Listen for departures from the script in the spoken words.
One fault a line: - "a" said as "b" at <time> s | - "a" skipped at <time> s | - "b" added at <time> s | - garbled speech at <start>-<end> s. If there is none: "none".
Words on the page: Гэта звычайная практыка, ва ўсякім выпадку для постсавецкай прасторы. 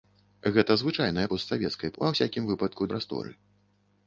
- "практыка" said as "постсавецкай" at 1.3 s
- "для постсавецкай" skipped at 2.9 s